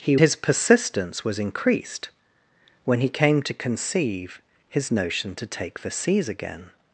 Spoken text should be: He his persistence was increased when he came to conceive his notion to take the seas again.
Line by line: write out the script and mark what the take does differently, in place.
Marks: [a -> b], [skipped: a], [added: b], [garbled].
He his persistence was increased when he came to conceive his notion to take the seas again.